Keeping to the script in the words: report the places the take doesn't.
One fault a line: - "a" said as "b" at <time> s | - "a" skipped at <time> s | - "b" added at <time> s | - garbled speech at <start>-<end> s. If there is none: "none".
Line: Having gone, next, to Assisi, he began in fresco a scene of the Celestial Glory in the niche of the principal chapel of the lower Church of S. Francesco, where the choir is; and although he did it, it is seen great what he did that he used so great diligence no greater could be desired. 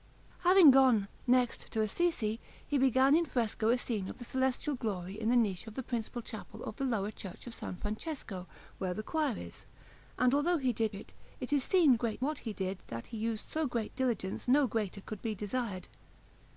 none